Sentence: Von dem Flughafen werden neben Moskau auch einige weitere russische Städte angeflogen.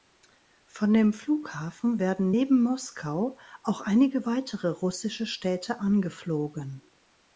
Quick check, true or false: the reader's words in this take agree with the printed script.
true